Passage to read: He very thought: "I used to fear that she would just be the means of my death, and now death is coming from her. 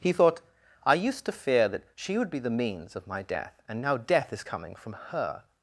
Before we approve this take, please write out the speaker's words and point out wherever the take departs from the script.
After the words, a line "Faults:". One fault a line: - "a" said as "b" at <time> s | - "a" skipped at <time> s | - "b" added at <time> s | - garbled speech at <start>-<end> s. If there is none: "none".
He thought: "I used to fear that she would be the means of my death, and now death is coming from her.
Faults:
- "very" skipped at 0.1 s
- "just" skipped at 2.3 s